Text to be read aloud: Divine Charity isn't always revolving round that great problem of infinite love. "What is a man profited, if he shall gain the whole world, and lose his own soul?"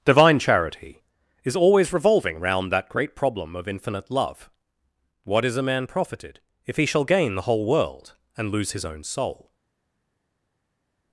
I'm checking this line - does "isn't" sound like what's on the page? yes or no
no